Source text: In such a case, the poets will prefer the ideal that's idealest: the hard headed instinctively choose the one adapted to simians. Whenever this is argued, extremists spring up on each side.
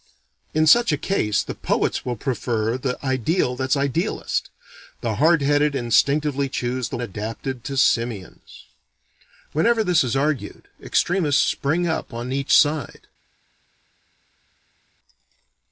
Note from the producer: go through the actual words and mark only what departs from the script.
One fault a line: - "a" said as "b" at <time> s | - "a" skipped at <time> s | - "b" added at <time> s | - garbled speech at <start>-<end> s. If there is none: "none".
- "one" skipped at 7.0 s